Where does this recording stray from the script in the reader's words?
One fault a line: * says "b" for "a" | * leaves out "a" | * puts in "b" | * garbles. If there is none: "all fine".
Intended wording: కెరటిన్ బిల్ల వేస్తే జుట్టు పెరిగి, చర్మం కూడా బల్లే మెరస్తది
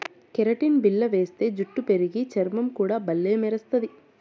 all fine